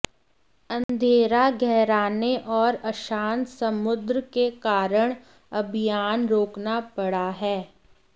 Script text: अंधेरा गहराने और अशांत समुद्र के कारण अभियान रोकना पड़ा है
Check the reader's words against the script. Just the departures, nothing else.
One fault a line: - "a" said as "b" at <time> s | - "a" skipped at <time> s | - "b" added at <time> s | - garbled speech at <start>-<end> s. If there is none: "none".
none